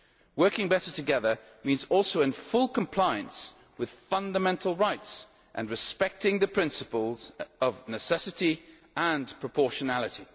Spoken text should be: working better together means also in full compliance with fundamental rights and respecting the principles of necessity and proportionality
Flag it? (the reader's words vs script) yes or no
no